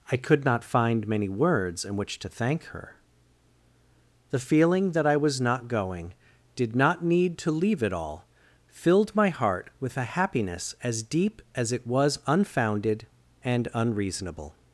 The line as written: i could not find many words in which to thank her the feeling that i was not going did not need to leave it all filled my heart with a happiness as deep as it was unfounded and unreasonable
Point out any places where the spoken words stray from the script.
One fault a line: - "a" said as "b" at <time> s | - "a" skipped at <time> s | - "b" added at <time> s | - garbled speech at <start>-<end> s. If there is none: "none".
none